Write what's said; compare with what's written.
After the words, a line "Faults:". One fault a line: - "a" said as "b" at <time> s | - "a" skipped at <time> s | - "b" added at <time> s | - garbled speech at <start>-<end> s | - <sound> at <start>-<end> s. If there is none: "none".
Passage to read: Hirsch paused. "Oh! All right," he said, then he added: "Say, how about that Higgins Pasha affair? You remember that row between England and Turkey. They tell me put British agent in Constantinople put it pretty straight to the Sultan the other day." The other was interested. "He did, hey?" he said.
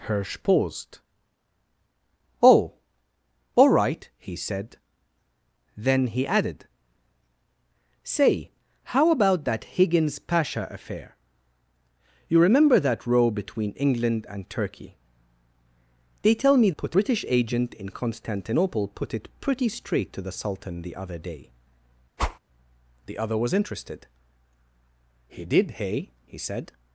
Hirsch paused. "Oh! All right," he said, then he added: "Say, how about that Higgins Pasha affair? You remember that row between England and Turkey. They tell me put British agent in Constantinople put it pretty straight to the Sultan the other day." The other was interested. "He did, hey?" he said.
Faults:
- whoosh at 22.2-22.4 s